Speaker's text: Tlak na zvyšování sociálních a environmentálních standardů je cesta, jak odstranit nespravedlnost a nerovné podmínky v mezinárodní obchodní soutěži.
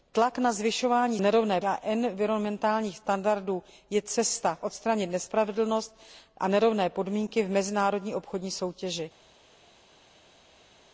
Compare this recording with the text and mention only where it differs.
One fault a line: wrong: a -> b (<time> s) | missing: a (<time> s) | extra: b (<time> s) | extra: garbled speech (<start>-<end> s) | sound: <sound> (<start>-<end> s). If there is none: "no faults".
wrong: sociálních -> nerovné (1.2 s)
missing: jak (4.6 s)